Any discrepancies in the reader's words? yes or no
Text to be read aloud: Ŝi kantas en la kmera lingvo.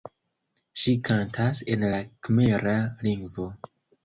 no